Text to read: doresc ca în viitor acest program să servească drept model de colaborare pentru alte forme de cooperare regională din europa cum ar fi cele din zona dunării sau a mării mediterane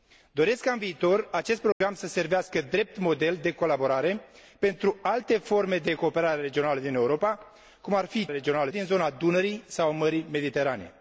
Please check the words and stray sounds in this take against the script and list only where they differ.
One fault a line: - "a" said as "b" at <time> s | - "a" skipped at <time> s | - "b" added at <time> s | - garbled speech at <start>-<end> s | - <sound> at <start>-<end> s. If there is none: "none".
- dropout at 1.7-1.8 s
- "cele" said as "regională" at 8.3 s